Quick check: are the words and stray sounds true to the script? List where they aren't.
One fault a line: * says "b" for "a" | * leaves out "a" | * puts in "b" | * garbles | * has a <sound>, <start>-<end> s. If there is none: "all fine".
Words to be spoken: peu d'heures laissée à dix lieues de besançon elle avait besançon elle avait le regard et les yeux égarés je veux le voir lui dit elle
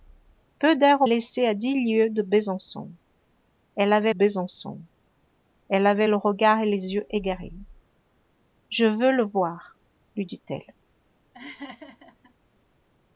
* has a laugh, 11.3-12.3 s